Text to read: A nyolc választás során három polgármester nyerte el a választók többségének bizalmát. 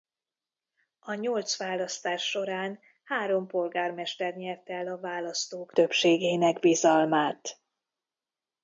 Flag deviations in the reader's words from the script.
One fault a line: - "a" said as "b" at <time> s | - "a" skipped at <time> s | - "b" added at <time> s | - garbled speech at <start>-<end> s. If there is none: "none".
none